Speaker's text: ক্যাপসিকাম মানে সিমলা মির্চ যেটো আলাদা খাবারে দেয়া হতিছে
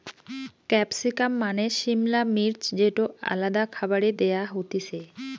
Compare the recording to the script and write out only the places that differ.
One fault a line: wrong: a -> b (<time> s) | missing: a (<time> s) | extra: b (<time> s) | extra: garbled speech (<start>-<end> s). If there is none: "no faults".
no faults